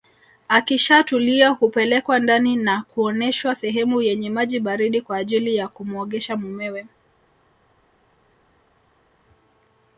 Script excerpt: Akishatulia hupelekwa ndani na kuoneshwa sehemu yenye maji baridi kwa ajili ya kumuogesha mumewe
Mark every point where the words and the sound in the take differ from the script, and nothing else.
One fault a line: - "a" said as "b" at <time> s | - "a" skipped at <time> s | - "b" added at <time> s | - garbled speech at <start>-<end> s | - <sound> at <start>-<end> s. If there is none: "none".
none